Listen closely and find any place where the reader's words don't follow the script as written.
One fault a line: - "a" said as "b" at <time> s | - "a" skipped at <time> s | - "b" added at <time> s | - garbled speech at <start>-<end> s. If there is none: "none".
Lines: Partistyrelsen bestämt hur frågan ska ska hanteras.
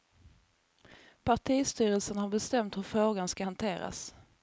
- "har" added at 2.2 s
- "ska" skipped at 3.4 s